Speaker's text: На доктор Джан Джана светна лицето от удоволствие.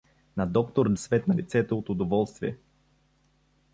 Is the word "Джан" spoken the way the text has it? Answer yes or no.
no